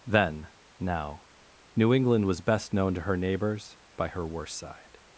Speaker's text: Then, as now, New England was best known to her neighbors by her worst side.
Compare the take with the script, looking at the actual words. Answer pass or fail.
fail